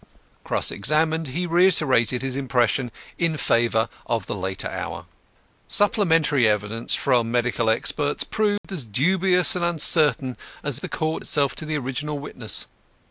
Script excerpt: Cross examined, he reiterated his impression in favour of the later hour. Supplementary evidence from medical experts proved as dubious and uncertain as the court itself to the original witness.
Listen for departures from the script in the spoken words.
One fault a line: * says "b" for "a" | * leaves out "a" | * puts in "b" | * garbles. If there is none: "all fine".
all fine